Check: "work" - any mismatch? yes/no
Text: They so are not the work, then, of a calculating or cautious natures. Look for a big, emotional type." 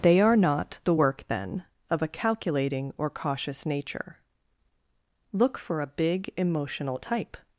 no